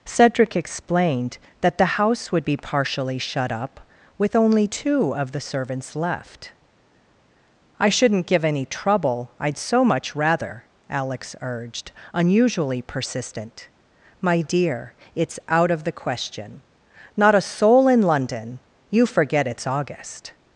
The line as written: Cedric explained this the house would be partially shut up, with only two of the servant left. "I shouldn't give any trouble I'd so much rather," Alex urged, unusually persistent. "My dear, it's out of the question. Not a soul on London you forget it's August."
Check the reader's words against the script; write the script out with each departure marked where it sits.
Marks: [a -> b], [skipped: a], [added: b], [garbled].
Cedric explained [this -> that] the house would be partially shut up, with only two of the [servant -> servants] left. "I shouldn't give any trouble I'd so much rather," Alex urged, unusually persistent. "My dear, it's out of the question. Not a soul [on -> in] London you forget it's August."